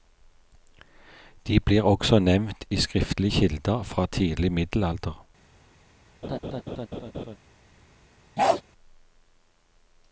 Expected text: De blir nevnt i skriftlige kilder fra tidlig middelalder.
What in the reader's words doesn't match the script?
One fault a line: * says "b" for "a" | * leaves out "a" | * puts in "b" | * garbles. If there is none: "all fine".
* puts in "også"